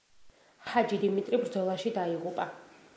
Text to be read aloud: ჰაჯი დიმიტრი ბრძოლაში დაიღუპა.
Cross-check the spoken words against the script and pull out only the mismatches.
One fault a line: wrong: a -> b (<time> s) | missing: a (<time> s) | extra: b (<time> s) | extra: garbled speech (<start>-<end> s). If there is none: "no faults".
no faults